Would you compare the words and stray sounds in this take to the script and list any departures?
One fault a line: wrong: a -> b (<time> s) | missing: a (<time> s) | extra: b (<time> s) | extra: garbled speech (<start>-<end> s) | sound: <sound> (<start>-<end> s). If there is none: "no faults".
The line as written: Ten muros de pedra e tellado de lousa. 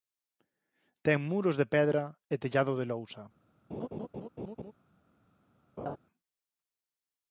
sound: laugh (3.7-4.7 s)
sound: laugh (5.8-6.0 s)